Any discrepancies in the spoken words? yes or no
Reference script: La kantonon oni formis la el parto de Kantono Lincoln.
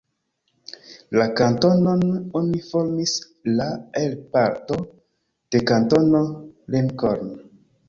no